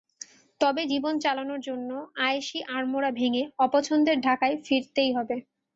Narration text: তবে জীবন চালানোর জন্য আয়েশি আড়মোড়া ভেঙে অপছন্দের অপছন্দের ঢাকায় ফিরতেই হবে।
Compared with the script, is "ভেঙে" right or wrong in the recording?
right